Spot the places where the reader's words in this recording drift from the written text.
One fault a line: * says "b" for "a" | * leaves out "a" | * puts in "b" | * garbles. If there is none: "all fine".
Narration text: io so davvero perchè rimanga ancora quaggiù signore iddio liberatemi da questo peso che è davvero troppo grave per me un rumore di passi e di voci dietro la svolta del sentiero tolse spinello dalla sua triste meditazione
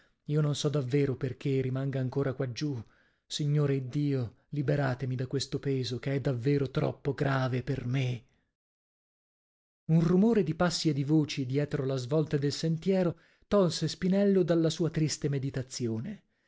* puts in "non"